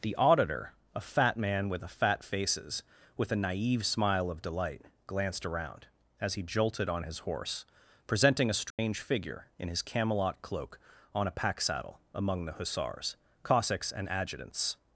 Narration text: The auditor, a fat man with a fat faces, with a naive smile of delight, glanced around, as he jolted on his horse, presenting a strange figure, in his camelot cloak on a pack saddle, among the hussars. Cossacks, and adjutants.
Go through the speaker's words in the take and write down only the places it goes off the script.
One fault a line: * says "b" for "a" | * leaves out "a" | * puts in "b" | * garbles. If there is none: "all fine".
all fine